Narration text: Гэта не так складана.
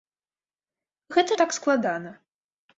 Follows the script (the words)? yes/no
yes